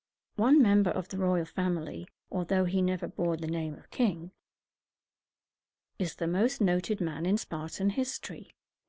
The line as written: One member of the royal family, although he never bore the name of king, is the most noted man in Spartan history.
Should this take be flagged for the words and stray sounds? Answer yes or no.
no